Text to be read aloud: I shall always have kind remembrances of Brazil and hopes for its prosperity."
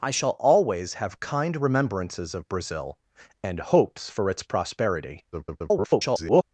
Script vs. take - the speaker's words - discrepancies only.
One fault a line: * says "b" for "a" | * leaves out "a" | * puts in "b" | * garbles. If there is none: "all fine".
* garbles